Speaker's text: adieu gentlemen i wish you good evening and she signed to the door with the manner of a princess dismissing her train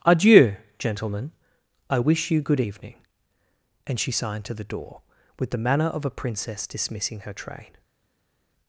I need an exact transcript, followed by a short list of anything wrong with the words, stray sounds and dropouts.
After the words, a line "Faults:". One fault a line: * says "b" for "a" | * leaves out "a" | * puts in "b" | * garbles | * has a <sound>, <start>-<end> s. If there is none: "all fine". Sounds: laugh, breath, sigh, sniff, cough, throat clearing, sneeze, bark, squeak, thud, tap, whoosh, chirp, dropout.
adieu gentlemen i wish you good evening and she signed to the door with the manner of a princess dismissing her train
Faults:
all fine